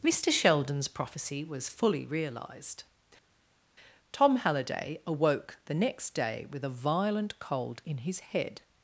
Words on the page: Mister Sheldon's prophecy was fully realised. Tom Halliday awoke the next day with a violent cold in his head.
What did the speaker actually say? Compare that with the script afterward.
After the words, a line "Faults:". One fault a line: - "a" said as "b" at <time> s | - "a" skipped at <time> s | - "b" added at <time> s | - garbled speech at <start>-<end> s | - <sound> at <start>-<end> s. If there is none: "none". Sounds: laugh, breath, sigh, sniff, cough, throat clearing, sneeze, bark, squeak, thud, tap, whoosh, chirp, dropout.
Mister Sheldon's prophecy was fully realised. Tom Halliday awoke the next day with a violent cold in his head.
Faults:
none